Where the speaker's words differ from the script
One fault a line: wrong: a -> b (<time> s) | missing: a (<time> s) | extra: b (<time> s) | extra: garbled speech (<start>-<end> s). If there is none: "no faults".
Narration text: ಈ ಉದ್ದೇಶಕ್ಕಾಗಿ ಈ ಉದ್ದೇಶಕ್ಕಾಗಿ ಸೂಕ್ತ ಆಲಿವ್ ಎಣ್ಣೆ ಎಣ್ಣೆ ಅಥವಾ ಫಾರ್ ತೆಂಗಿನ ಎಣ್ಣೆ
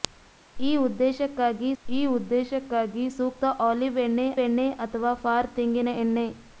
no faults